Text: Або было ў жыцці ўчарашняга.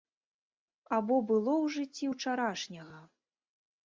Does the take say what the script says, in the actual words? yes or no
yes